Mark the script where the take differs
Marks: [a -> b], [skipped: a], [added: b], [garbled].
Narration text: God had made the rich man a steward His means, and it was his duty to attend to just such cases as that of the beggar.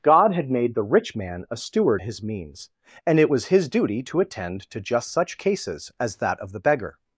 God had made the rich man a steward His means, and it was his duty to attend to just such cases as that of the beggar.